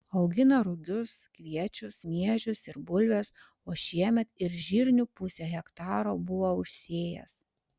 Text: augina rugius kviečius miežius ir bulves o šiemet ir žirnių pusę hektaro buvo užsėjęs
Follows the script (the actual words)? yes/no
yes